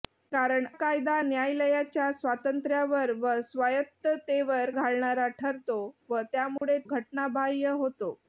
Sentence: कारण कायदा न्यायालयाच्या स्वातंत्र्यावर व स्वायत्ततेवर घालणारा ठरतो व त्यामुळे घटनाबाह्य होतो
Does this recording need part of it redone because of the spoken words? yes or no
no